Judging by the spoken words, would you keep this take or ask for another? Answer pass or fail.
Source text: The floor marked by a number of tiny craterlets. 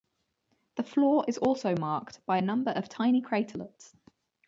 fail